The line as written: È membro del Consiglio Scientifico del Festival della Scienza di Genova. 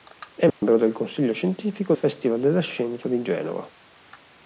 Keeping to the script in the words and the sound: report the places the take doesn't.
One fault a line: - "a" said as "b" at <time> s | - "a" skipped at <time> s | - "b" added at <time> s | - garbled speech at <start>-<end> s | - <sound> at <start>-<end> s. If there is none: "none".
- dropout at 0.5-0.6 s
- "del" skipped at 1.9 s